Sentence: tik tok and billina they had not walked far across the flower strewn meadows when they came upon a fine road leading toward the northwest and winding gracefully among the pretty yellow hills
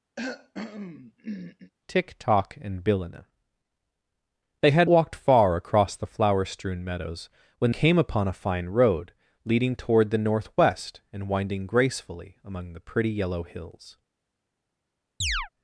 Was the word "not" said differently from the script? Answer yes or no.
yes